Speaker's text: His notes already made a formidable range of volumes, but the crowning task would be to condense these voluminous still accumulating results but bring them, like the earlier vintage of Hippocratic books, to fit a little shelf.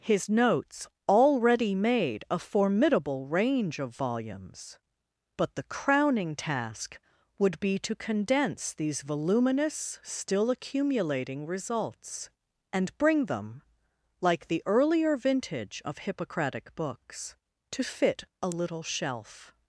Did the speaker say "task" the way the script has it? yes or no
yes